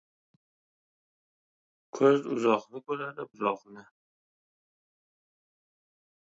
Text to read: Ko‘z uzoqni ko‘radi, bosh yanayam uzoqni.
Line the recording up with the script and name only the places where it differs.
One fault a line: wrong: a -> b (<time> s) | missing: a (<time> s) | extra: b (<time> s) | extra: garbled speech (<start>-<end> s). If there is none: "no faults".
missing: bosh yanayam (3.3 s)